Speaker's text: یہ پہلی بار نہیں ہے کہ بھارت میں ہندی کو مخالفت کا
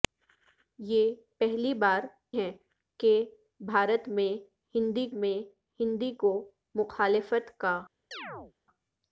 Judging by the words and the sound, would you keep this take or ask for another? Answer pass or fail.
fail